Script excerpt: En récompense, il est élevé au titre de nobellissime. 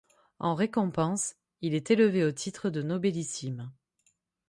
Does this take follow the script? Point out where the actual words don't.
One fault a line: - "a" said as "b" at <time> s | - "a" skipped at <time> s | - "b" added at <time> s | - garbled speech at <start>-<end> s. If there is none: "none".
none